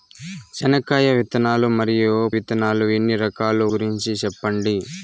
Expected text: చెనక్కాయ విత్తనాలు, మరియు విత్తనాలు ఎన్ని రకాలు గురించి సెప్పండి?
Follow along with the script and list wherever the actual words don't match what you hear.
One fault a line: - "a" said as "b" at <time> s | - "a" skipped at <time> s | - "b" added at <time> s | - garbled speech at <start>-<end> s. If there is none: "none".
none